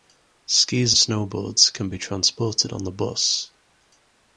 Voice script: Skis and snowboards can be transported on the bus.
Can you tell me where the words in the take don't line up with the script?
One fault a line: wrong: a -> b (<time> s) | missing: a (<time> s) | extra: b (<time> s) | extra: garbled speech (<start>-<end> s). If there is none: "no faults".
missing: and (0.9 s)